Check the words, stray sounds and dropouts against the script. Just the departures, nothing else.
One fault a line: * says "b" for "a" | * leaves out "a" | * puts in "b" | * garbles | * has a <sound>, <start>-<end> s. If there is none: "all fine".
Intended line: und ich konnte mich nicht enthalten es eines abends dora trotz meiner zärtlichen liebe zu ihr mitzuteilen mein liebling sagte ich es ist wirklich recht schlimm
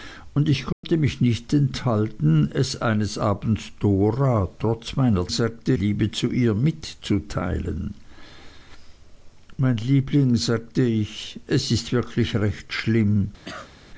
* has a dropout, 0.7-0.8 s
* says "sagte" for "zärtlichen"
* has a cough, 13.4-13.7 s